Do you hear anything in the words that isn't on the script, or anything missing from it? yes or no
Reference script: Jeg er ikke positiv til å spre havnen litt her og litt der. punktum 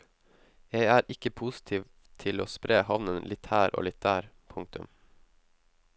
no